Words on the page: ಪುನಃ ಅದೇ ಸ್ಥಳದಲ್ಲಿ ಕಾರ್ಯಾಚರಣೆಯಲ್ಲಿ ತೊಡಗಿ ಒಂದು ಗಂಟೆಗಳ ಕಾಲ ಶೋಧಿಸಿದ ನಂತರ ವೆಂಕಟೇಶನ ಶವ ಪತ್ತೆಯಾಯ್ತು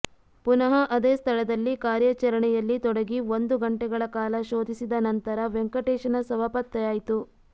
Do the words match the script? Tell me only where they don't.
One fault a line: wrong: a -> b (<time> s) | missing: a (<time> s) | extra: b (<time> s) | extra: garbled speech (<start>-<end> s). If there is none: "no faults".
no faults